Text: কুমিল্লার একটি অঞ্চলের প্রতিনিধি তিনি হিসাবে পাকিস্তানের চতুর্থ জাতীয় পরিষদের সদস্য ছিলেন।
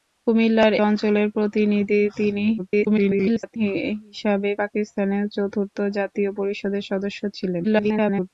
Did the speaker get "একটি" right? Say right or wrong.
wrong